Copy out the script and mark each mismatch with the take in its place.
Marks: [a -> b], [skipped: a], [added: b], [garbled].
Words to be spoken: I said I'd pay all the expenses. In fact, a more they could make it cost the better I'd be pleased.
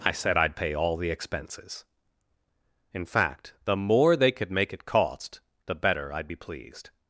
I said I'd pay all the expenses. In fact, [a -> the] more they could make it cost the better I'd be pleased.